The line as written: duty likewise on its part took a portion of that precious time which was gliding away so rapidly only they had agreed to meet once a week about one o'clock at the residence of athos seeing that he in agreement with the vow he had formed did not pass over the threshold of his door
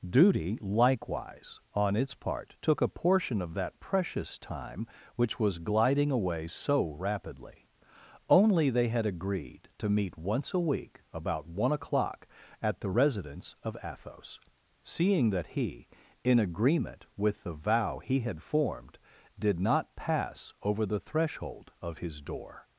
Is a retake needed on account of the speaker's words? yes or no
no